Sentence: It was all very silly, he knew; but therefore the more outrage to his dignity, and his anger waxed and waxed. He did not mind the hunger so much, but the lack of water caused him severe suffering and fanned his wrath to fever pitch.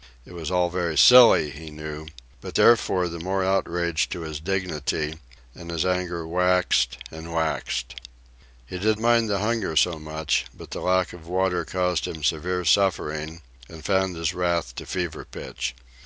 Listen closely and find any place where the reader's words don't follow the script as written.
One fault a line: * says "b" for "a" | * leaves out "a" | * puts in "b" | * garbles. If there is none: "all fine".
* leaves out "not"